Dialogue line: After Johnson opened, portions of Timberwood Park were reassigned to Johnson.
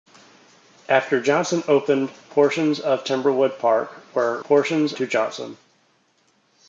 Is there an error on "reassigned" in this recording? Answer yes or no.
yes